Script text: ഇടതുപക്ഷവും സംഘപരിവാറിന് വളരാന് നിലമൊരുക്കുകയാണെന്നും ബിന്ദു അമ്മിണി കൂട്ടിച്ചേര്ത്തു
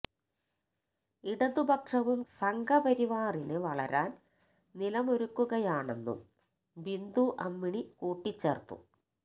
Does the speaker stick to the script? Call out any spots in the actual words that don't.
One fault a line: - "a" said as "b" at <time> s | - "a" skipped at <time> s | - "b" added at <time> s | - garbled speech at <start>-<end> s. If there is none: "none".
none